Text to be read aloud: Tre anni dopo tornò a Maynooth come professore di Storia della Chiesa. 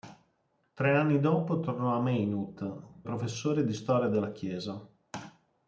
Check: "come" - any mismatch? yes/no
yes